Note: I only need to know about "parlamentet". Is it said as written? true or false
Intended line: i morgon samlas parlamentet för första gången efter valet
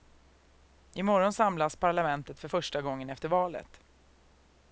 true